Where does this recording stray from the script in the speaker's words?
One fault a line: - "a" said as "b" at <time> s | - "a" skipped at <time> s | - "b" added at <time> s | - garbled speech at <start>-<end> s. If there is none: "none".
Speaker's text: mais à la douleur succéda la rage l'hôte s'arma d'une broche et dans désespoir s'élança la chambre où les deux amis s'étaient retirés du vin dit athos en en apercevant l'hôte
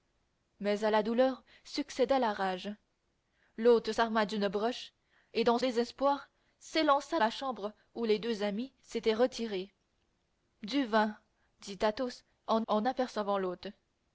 none